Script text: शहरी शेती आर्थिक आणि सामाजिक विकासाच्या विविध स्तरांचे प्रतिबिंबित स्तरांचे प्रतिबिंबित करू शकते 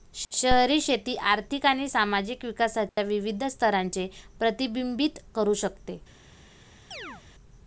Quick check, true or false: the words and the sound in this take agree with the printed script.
false